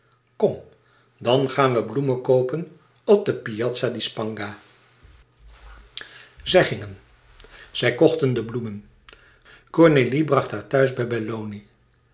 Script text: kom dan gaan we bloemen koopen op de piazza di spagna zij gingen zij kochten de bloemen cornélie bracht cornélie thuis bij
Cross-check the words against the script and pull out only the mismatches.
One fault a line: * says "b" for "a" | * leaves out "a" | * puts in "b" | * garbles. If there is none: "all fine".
* says "haar" for "cornélie"